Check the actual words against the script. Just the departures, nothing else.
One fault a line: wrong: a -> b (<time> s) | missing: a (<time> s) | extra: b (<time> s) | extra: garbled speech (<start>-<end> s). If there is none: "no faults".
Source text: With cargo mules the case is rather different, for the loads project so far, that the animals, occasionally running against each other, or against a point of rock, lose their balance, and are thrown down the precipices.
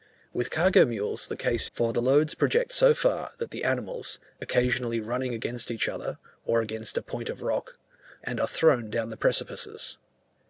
missing: is rather different (1.7 s)
missing: lose their balance (7.8 s)